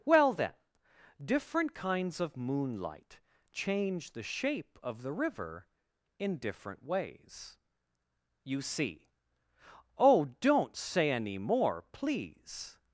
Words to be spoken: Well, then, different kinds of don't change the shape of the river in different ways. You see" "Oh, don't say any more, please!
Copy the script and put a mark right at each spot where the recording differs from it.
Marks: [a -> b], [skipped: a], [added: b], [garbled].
Well, then, different kinds of [don't -> moonlight] change the shape of the river in different ways. You see" "Oh, don't say any more, please!